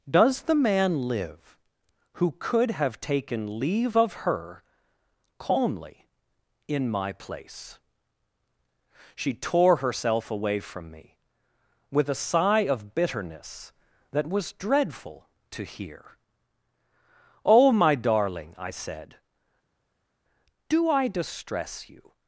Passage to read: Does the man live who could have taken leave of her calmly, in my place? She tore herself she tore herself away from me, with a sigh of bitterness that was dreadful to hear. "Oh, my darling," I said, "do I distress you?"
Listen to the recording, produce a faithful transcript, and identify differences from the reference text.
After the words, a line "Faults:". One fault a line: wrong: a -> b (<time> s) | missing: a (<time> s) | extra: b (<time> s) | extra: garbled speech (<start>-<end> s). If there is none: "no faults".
Does the man live who could have taken leave of her calmly, in my place? She tore herself away from me, with a sigh of bitterness that was dreadful to hear. "Oh, my darling," I said, "do I distress you?"
Faults:
missing: she tore herself (10.3 s)